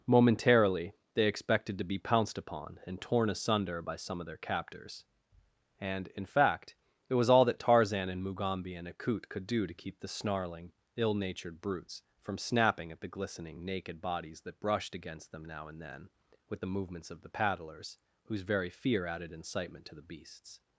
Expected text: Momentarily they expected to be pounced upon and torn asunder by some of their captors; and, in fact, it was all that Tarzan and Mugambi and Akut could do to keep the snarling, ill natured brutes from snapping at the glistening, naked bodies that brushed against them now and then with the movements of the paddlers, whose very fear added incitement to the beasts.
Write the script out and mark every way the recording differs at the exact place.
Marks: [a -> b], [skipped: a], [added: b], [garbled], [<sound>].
Momentarily they expected to be pounced upon and torn asunder by some of their captors; and, in fact, it was all that Tarzan and Mugambi and Akut could do to keep the snarling, ill natured brutes from snapping at the glistening, naked bodies that brushed against them now and then with the movements of the paddlers, whose very fear added incitement to the beasts.